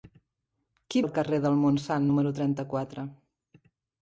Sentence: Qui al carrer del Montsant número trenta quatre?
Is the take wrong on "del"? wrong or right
right